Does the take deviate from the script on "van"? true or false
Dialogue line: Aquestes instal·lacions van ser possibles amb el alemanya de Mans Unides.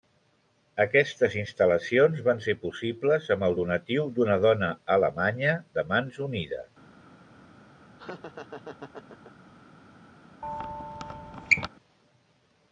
false